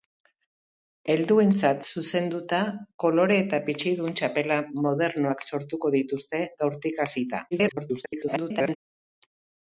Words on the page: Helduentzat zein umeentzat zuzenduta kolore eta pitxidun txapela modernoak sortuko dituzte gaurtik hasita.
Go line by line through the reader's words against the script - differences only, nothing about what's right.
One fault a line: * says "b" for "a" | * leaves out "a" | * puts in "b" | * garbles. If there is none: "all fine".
* leaves out "zein umeentzat"
* garbles